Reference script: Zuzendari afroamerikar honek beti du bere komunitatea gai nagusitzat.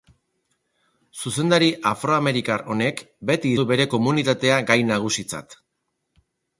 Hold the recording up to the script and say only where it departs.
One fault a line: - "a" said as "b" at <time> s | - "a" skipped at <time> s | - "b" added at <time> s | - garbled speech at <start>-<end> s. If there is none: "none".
none